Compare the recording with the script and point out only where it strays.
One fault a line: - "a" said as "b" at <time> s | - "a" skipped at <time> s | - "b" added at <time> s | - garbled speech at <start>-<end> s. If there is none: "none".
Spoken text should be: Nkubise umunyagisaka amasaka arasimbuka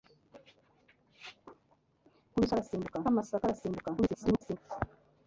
- "umunyagisaka" said as "arasimbuka" at 2.5 s
- garbled speech at 4.0-4.6 s